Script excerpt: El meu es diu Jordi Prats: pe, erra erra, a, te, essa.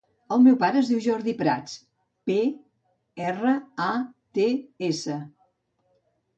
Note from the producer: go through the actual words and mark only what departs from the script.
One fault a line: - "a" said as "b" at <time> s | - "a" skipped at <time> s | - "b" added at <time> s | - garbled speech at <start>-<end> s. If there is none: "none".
- "pare" added at 0.6 s
- "erra" skipped at 3.6 s